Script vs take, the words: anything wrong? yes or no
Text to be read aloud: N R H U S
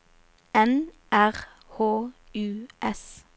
no